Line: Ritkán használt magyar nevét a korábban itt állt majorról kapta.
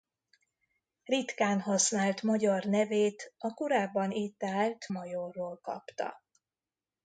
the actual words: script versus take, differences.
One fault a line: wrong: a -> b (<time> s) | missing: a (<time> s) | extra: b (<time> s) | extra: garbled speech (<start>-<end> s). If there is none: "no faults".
no faults